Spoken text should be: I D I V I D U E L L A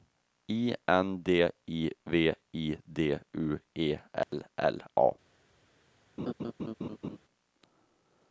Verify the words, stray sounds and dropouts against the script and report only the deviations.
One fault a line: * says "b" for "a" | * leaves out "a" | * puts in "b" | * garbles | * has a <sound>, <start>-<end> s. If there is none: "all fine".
* puts in "N"
* has a dropout, 4.2-4.3 s
* has a laugh, 6.2-7.2 s